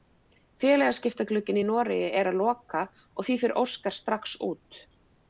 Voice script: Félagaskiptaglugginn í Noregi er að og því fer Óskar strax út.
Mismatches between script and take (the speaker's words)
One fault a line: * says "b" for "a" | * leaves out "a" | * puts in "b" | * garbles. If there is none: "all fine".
* puts in "loka"